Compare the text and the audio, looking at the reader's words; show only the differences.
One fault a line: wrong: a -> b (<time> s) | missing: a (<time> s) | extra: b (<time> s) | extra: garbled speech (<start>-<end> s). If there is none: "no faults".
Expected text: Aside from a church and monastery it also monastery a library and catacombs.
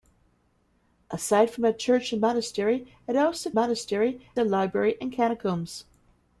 no faults